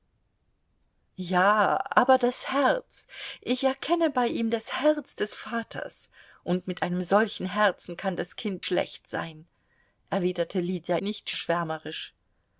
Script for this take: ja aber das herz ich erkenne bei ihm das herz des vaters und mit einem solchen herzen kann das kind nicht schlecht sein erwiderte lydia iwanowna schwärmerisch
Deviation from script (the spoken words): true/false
true